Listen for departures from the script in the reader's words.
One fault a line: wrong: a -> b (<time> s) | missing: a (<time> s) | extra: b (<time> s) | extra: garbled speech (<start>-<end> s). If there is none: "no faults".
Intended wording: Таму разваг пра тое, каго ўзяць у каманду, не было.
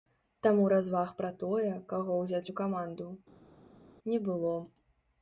no faults